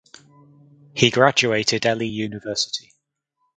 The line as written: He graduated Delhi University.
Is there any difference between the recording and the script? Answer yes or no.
no